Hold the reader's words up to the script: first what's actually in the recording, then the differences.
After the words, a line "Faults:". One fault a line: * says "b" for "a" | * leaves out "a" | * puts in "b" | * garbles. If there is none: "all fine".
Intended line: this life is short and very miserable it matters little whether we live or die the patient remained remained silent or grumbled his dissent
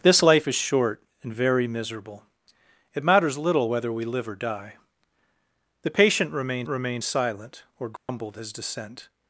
this life is short and very miserable it matters little whether we live or die the patient remained remained silent or grumbled his dissent
Faults:
all fine